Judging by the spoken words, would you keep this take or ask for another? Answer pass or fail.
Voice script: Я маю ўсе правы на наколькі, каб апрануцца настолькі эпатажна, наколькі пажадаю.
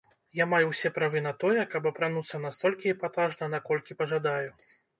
fail